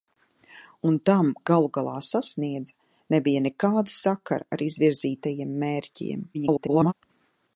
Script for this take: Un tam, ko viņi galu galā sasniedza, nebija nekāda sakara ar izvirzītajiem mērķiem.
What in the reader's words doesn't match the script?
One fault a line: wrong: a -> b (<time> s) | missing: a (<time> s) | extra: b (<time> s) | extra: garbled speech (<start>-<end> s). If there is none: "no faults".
missing: ko viņi (1.3 s)
extra: garbled speech (6.3-6.9 s)